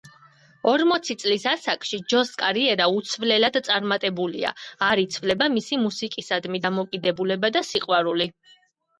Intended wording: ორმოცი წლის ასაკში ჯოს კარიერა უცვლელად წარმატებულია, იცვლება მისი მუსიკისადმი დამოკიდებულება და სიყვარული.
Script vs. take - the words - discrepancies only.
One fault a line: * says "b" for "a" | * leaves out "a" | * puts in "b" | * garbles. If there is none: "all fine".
* puts in "არ"